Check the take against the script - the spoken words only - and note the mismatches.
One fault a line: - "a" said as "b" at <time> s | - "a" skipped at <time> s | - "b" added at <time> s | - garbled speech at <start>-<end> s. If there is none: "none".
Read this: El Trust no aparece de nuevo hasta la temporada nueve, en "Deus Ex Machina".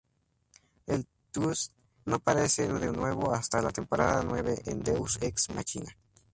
none